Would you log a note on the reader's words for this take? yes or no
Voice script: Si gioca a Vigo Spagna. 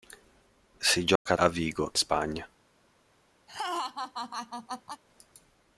no